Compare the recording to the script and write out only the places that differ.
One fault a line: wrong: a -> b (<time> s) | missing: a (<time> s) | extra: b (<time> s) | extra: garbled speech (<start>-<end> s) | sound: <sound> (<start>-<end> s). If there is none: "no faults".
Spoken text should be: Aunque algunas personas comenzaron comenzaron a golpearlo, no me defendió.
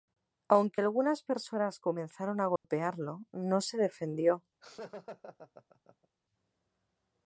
missing: comenzaron (2.4 s)
sound: dropout (2.6-2.6 s)
wrong: me -> se (3.6 s)
sound: laugh (4.6-6.1 s)